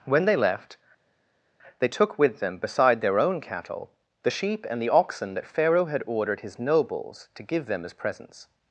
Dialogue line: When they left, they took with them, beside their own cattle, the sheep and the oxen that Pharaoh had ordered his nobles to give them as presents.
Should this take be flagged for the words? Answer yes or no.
no